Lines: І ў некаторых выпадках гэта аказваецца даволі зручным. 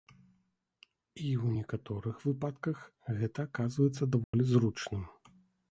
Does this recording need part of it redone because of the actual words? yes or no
no